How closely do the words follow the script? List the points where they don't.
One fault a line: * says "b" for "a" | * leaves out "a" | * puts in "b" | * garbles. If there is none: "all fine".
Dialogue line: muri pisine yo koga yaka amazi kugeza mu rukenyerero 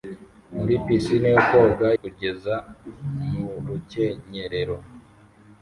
* leaves out "yaka amazi"